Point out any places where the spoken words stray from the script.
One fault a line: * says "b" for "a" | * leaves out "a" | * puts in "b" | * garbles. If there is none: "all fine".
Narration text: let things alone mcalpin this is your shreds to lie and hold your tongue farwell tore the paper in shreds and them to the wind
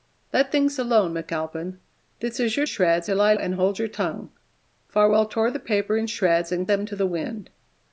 all fine